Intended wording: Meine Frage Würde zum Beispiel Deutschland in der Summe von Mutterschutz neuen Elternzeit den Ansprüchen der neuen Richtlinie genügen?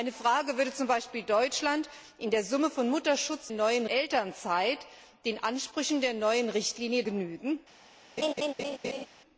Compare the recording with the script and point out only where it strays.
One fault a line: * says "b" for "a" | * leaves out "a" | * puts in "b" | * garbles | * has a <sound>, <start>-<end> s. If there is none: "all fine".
* has a laugh, 8.2-9.1 s